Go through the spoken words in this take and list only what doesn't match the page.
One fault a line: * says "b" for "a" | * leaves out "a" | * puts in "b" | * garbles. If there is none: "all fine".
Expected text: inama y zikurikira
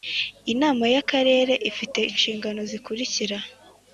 * puts in "akarere ifite inshingano"